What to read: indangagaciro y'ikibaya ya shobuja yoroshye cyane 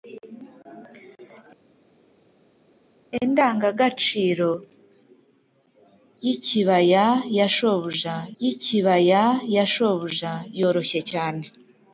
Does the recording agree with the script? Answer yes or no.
no